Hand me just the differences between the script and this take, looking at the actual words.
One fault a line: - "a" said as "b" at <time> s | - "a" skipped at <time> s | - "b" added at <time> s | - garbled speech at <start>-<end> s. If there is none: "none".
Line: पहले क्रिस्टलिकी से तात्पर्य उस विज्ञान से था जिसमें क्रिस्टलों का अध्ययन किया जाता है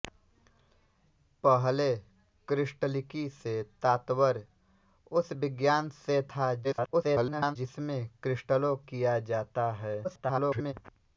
- garbled speech at 6.6-7.6 s
- "का अध्ययन" skipped at 8.7 s
- garbled speech at 10.0-10.7 s